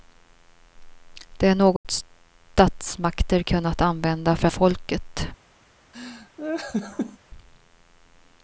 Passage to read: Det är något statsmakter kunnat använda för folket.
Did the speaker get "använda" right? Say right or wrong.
right